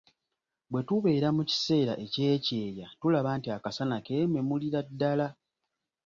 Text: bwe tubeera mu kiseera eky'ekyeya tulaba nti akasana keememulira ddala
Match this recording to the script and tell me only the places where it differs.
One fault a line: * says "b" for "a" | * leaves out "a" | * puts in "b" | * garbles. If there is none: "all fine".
all fine